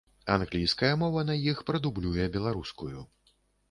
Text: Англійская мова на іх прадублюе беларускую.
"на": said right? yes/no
yes